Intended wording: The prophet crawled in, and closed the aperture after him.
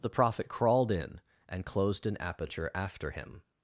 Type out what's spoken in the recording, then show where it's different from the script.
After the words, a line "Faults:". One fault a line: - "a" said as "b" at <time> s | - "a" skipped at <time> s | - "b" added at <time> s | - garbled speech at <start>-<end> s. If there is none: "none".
The prophet crawled in, and closed an aperture after him.
Faults:
- "the" said as "an" at 2.0 s